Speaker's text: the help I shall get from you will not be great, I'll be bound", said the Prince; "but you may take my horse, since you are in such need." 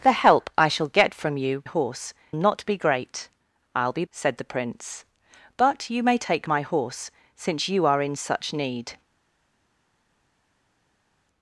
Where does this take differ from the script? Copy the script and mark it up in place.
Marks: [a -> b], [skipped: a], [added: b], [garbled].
the help I shall get from you [will -> horse] not be great, I'll be [skipped: bound",] said the Prince; "but you may take my horse, since you are in such need."